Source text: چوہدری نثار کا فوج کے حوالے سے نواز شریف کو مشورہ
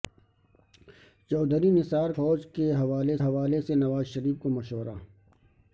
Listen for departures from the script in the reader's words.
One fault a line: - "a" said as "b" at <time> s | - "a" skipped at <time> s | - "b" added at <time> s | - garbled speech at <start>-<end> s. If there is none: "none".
- "کا" skipped at 2.1 s
- "حوالے" added at 3.2 s